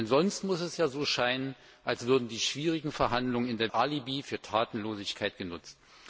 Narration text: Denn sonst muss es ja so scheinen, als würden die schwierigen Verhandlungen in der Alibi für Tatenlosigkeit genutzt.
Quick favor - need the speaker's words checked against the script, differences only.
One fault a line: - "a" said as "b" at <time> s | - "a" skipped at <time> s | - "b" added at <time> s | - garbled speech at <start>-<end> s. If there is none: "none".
none